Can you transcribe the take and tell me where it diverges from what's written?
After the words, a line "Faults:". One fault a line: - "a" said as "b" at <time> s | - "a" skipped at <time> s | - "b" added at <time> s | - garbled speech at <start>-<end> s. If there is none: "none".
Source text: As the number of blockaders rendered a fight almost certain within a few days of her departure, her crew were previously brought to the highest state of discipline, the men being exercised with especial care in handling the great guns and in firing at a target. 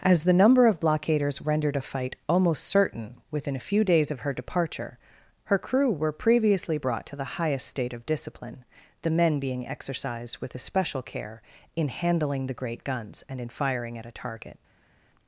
As the number of blockaders rendered a fight almost certain within a few days of her departure, her crew were previously brought to the highest state of discipline, the men being exercised with especial care in handling the great guns and in firing at a target.
Faults:
none